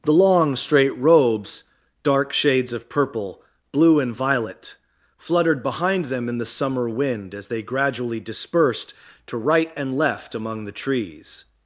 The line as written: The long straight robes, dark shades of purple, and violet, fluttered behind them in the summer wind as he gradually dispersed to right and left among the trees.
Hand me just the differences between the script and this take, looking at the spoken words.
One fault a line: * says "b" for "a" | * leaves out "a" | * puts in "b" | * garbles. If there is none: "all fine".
* puts in "blue"
* says "they" for "he"